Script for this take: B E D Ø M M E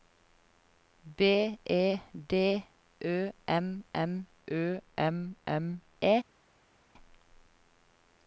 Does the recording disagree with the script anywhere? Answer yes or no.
yes